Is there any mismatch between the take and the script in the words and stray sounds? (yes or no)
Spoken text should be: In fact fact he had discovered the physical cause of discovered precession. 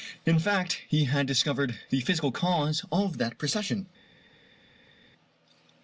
yes